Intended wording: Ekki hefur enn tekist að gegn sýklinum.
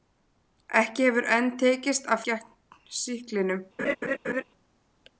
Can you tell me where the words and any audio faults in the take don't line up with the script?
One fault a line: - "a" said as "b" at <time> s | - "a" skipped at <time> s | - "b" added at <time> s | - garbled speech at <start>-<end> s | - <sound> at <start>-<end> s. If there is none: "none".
- laugh at 3.8-4.4 s